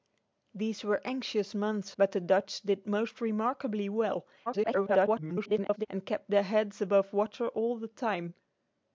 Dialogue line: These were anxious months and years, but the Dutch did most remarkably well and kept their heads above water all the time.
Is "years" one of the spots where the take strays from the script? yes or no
yes